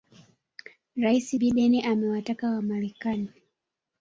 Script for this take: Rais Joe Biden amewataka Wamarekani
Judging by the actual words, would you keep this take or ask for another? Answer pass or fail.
fail